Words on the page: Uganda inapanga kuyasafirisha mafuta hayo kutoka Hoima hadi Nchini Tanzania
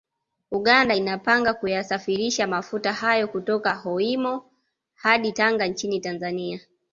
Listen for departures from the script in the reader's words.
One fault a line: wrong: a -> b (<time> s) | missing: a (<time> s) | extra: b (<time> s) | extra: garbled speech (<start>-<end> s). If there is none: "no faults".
extra: Tanga (5.3 s)